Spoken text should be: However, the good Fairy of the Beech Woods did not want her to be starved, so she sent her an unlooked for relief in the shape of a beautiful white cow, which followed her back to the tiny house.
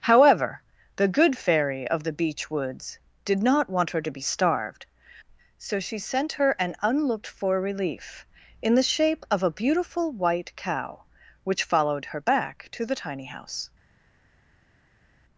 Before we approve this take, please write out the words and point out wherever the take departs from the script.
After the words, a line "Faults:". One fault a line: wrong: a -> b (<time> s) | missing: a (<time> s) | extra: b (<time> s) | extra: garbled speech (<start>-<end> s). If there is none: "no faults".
However, the good Fairy of the Beech Woods did not want her to be starved, so she sent her an unlooked for relief in the shape of a beautiful white cow, which followed her back to the tiny house.
Faults:
no faults